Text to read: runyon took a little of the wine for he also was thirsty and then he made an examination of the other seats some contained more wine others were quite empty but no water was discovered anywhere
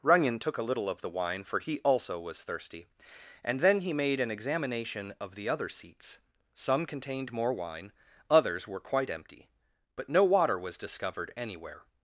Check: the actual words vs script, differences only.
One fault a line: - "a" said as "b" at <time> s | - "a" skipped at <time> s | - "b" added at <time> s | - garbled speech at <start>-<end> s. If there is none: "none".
none